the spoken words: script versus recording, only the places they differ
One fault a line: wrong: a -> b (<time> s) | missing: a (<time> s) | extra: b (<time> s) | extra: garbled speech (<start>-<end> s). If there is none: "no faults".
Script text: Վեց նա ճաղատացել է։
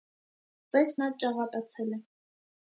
no faults